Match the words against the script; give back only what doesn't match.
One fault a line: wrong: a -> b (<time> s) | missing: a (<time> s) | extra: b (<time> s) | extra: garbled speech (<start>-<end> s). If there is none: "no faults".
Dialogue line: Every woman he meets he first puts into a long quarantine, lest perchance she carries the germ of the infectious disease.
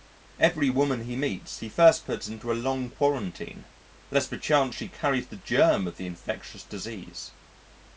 no faults